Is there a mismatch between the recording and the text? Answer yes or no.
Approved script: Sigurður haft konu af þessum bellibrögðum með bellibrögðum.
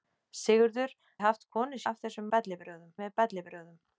no